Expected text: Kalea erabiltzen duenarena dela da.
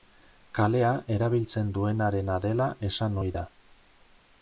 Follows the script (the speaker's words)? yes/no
no